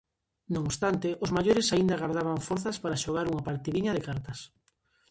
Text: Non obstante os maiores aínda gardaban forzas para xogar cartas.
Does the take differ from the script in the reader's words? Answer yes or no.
yes